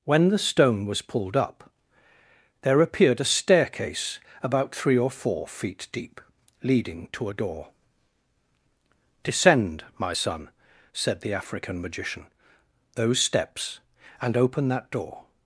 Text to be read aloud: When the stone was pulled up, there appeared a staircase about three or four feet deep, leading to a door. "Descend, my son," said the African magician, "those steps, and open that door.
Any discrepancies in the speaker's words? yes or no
no